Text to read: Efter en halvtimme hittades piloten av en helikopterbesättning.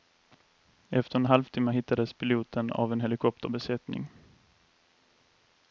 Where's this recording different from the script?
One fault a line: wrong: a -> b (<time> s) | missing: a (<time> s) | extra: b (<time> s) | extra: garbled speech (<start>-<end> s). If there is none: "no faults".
no faults